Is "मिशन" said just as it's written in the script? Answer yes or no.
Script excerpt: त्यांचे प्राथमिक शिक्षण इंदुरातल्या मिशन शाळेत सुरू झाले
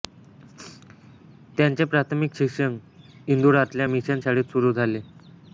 yes